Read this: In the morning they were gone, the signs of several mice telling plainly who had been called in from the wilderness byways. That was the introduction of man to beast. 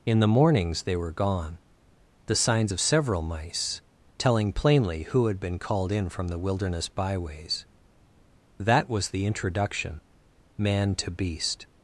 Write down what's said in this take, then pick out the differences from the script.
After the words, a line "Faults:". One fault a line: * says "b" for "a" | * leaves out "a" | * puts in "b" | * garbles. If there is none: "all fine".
In the mornings they were gone, the signs of several mice telling plainly who had been called in from the wilderness byways. That was the introduction man to beast.
Faults:
* says "mornings" for "morning"
* leaves out "of"